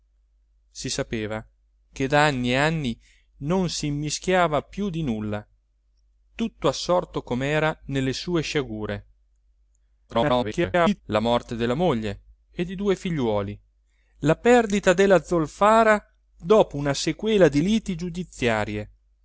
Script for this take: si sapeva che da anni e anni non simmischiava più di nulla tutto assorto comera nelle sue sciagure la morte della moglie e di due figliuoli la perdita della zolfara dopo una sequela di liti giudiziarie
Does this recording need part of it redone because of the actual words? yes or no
yes